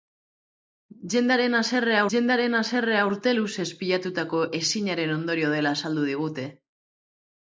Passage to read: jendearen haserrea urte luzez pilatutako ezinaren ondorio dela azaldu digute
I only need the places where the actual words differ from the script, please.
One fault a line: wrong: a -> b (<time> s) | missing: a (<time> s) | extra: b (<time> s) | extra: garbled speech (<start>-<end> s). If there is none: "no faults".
extra: jendearen haserrea (2.1 s)